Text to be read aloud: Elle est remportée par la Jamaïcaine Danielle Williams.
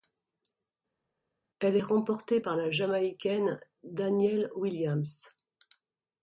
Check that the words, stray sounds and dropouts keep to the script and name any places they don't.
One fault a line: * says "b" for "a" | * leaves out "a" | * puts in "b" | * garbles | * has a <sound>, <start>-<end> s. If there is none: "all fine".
all fine